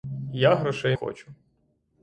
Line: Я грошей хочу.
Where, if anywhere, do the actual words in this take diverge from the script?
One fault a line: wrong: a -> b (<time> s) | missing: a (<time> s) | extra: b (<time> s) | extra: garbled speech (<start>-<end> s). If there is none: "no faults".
no faults